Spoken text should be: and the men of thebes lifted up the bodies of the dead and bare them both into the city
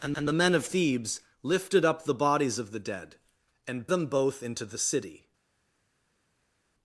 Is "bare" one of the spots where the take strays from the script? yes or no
yes